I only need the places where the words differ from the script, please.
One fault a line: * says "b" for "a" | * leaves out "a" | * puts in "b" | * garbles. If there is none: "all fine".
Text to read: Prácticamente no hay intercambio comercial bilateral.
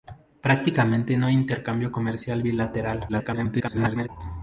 * garbles